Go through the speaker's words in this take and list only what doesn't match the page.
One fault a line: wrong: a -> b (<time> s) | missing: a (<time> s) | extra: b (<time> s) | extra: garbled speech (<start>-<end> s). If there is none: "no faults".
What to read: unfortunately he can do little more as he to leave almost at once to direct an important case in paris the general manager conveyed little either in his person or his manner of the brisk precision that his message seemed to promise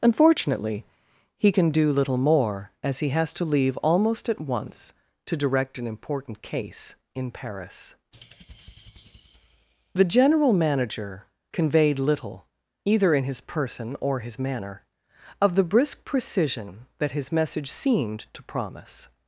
extra: has (3.1 s)